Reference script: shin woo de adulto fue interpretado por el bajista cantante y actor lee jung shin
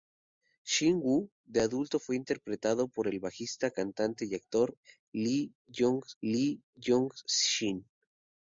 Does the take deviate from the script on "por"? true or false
false